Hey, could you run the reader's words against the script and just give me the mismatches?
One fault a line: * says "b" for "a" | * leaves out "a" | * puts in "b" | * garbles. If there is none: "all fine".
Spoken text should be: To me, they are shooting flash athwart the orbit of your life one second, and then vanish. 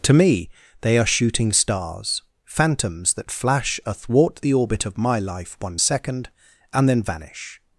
* puts in "stars phantoms that"
* says "my" for "your"